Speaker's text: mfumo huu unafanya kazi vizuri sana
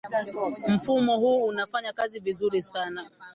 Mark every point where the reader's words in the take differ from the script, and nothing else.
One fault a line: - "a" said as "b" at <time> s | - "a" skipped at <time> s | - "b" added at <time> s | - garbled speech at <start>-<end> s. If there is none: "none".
none